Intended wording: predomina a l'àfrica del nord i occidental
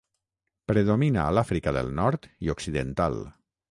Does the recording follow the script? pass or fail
pass